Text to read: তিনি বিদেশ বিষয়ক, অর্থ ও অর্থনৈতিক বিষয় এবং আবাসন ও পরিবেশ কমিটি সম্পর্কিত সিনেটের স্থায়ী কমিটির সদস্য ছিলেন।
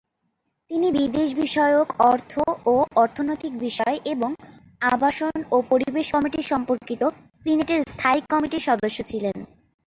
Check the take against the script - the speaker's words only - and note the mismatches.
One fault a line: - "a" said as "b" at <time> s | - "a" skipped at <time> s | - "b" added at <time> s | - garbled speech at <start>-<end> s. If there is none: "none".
none